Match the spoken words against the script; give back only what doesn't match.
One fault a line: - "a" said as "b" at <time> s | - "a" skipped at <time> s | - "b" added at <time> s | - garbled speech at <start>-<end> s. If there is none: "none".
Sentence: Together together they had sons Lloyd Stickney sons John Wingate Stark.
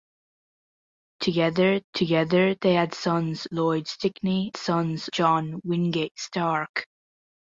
none